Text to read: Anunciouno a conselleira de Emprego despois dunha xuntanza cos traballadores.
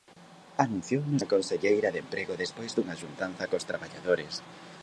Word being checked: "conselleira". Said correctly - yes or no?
yes